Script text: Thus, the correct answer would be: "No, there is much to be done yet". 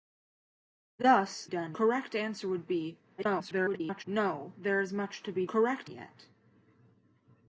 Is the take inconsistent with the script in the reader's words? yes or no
yes